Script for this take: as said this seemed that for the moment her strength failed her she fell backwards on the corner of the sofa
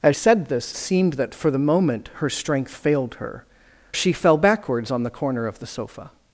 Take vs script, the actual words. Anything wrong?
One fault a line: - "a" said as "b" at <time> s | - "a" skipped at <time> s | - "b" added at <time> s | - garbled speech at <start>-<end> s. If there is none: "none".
none